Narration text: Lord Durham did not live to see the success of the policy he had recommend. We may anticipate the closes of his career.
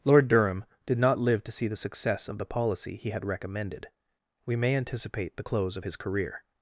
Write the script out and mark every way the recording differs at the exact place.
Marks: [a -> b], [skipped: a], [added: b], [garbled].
Lord Durham did not live to see the success of the policy he had [recommend. -> recommended] We may anticipate the [closes -> close] of his career.